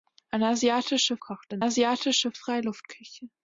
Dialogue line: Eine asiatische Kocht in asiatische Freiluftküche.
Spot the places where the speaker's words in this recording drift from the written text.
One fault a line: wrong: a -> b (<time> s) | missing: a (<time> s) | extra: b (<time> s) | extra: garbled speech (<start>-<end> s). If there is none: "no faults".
no faults